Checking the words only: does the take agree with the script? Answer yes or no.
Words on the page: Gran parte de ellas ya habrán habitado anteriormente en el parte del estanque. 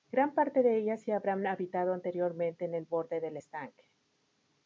no